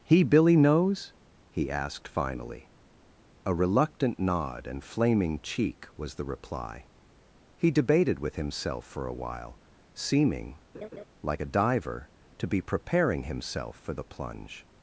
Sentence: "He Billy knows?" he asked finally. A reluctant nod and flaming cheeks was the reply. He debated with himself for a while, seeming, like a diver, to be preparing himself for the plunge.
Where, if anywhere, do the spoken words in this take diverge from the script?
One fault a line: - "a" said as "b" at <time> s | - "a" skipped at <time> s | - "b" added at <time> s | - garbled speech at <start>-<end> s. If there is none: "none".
- "cheeks" said as "cheek" at 5.4 s